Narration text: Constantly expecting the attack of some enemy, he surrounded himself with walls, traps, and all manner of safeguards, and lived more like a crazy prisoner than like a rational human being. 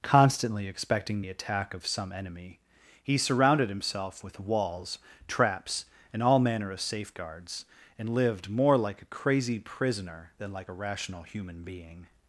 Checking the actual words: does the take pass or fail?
pass